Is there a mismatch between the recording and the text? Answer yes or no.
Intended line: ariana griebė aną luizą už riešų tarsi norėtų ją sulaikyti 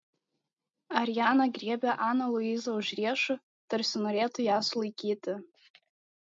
no